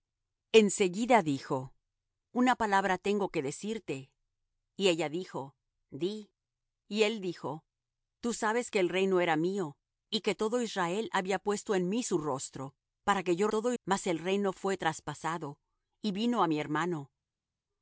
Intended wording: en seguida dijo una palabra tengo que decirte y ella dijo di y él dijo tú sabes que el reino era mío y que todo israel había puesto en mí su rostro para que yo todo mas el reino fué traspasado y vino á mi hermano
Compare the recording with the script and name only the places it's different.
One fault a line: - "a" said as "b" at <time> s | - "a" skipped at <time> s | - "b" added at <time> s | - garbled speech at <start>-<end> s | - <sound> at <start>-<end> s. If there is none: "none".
none